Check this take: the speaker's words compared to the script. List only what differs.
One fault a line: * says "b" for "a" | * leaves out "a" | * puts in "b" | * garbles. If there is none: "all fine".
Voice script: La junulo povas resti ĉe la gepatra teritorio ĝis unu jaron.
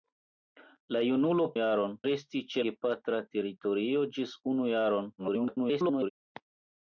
* says "jaron" for "povas"
* leaves out "la"
* garbles